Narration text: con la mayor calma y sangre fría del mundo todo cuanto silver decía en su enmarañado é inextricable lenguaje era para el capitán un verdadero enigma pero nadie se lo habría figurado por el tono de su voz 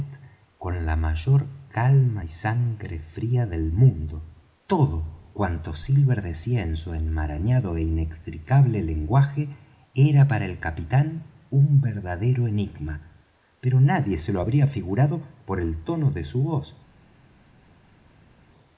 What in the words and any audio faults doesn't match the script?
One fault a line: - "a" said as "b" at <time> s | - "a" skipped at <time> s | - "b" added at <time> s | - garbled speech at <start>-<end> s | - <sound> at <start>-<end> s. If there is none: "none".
none